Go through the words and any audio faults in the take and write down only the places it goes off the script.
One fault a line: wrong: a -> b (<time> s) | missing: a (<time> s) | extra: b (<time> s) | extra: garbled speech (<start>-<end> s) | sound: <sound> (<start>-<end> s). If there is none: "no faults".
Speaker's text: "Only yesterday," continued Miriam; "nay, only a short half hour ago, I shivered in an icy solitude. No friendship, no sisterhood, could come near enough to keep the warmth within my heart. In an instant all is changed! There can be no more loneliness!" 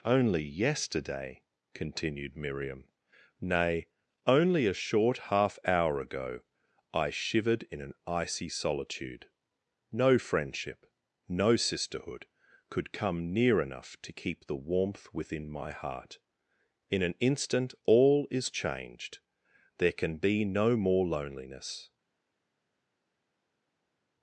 no faults